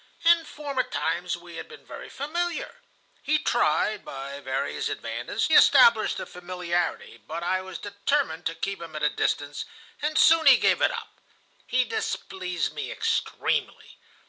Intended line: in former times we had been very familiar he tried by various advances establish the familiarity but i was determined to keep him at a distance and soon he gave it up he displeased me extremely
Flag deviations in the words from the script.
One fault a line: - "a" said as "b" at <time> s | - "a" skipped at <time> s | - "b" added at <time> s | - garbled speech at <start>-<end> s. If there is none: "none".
none